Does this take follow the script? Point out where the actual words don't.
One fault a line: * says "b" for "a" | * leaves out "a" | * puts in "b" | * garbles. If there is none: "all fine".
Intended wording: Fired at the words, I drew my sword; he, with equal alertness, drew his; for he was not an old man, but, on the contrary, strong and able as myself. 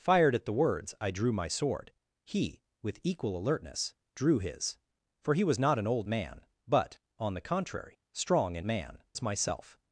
* says "man" for "able"